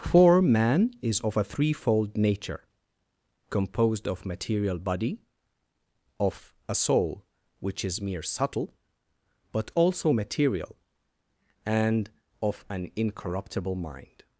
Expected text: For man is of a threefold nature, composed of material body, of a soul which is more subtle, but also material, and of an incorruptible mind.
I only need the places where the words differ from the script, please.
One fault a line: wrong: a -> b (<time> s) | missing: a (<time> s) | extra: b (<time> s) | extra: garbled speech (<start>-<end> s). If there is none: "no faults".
wrong: more -> mere (8.0 s)